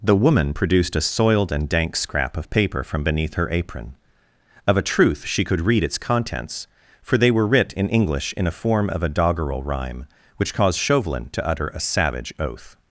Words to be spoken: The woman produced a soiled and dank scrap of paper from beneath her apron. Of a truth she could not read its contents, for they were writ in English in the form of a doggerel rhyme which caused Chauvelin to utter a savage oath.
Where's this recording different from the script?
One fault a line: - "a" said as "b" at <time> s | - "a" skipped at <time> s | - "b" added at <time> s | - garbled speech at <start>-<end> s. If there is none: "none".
- "not" skipped at 5.6 s
- "the" said as "a" at 8.5 s